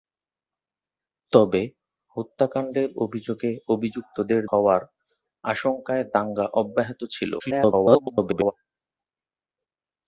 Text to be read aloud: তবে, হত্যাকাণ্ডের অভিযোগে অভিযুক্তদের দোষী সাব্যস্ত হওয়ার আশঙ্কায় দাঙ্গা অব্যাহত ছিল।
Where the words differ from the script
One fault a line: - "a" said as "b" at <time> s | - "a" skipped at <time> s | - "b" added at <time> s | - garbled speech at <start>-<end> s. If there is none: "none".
- "দোষী সাব্যস্ত" skipped at 4.4 s
- garbled speech at 7.4-8.5 s